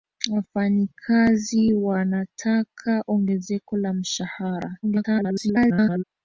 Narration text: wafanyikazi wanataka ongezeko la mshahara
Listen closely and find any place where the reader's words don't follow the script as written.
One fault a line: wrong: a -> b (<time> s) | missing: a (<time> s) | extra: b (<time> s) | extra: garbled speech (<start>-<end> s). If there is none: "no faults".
extra: garbled speech (4.8-6.0 s)